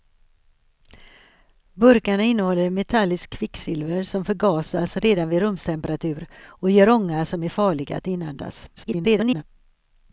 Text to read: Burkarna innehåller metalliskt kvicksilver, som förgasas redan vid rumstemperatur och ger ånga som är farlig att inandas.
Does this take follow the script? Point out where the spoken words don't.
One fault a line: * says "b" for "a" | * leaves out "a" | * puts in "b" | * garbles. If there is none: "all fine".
* garbles